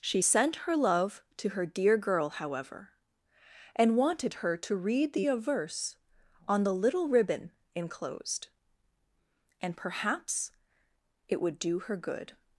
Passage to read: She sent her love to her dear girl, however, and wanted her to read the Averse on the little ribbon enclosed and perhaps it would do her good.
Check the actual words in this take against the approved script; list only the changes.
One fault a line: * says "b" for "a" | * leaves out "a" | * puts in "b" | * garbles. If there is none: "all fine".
all fine